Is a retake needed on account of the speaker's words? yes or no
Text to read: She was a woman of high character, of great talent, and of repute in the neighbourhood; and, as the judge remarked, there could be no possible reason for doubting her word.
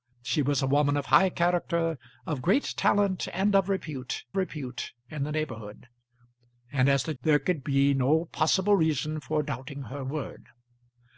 yes